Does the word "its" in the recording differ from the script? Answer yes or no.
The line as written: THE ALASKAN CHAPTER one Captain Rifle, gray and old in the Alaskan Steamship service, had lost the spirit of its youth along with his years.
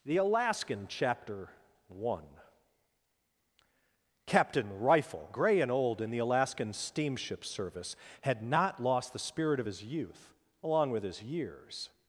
yes